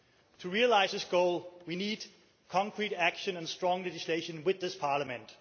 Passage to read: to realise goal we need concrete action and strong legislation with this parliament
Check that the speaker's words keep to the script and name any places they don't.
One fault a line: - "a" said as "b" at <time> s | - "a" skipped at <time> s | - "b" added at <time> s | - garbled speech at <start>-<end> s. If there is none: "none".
- "this" added at 0.9 s